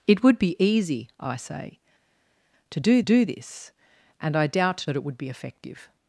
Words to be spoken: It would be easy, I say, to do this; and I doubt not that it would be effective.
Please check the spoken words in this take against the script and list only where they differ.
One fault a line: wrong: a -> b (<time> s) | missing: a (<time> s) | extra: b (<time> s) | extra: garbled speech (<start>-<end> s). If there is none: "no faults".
extra: do (3.0 s)
missing: not (4.9 s)